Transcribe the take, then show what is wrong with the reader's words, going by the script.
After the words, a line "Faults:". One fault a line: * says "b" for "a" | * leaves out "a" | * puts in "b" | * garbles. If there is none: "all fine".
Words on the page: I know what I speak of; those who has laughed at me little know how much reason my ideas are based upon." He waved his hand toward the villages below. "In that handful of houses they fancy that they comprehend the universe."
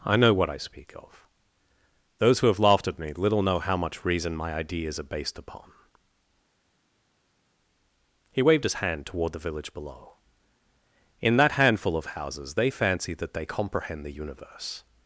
I know what I speak of; those who have laughed at me little know how much reason my ideas are based upon." He waved his hand toward the village below. "In that handful of houses they fancy that they comprehend the universe."
Faults:
* says "have" for "has"
* says "village" for "villages"